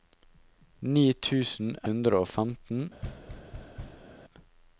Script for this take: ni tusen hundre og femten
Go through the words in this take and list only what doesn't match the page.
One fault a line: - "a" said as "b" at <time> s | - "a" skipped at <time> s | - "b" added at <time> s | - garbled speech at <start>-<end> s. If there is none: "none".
none